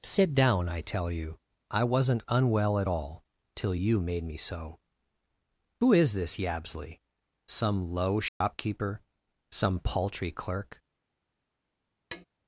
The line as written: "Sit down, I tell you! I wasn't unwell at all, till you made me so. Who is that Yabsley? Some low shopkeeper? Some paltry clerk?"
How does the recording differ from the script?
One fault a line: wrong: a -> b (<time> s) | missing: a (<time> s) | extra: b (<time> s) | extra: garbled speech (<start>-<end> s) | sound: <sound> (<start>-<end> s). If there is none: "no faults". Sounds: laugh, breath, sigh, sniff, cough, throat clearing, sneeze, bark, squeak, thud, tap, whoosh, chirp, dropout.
wrong: that -> this (6.1 s)
sound: dropout (8.3-8.4 s)
sound: tap (12.1-12.3 s)